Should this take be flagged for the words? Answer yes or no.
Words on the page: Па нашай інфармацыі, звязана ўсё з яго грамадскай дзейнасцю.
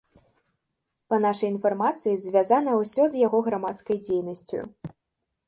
no